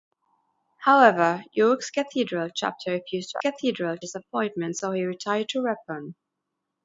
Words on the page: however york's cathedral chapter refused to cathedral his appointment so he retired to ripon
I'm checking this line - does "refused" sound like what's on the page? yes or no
yes